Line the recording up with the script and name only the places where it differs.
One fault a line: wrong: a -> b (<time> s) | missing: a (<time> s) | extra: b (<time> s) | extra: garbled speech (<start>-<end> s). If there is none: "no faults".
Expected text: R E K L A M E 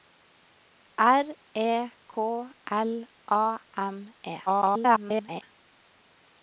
extra: garbled speech (4.5-5.4 s)